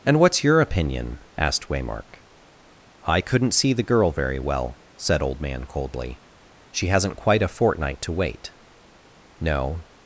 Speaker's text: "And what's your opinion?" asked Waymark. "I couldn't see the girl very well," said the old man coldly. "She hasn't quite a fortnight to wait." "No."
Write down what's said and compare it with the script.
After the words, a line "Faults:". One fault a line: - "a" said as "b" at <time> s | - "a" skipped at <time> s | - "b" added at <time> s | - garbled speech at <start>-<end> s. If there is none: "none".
"And what's your opinion?" asked Waymark. "I couldn't see the girl very well," said old man coldly. "She hasn't quite a fortnight to wait." "No."
Faults:
- "the" skipped at 5.2 s